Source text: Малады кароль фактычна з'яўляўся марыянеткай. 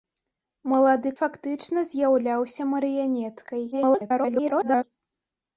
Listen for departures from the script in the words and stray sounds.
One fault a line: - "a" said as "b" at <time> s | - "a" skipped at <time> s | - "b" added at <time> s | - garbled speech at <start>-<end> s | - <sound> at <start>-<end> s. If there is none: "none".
- "кароль" skipped at 1.1 s
- garbled speech at 3.7-4.8 s